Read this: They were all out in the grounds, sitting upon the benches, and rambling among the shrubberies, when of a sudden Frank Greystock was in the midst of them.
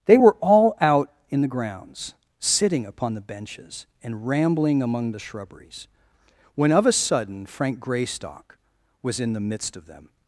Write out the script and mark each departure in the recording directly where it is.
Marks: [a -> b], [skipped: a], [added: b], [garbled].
They were all out in the grounds, sitting upon the benches, and rambling among the shrubberies, when of a sudden Frank Greystock was in the midst of them.